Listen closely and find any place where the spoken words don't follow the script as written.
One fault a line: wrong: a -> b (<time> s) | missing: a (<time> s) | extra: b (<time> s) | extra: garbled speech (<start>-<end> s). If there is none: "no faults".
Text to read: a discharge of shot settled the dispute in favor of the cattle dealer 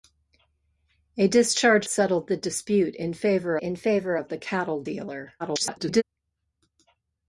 missing: of shot (1.9 s)
extra: in favor (3.6 s)
extra: garbled speech (5.4-6.0 s)